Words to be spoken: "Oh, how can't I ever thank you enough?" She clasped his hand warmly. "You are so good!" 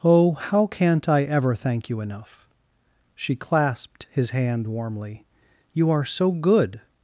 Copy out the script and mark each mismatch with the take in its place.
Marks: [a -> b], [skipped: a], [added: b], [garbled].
"Oh, how can't I ever thank you enough?" She clasped his hand warmly. "You are so good!"